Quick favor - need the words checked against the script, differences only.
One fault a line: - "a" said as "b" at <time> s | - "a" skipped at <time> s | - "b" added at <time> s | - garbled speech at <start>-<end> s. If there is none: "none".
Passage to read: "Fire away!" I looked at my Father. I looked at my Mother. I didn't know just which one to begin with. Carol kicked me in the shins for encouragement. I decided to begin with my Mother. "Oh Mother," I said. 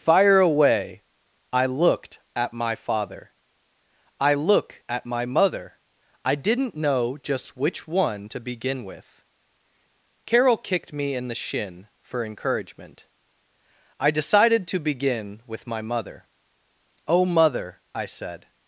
- "looked" said as "look" at 4.3 s
- "shins" said as "shin" at 11.3 s